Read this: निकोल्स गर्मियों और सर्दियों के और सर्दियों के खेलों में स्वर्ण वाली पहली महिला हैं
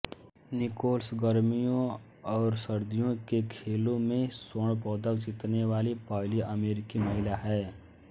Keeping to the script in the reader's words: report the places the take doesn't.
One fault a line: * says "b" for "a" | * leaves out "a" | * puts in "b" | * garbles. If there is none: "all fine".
* leaves out "और सर्दियों के"
* puts in "पदक जीतने"
* puts in "अमेरिकी"